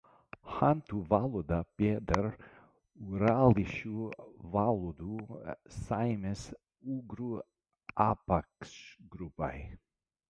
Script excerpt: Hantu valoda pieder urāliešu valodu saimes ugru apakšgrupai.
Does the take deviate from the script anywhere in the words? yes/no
no